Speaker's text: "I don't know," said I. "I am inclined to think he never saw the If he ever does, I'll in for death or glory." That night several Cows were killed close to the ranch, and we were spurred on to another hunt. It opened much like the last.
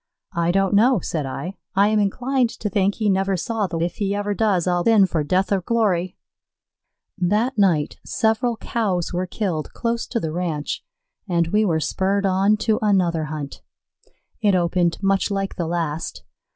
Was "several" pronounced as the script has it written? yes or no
yes